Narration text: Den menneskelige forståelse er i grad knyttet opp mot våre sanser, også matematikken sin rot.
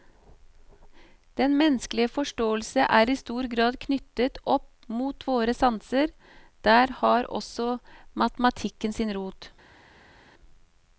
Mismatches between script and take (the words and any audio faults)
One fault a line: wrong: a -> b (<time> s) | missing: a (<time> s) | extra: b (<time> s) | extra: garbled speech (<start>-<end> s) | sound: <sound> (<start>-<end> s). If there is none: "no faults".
extra: stor (3.2 s)
extra: der har (6.6 s)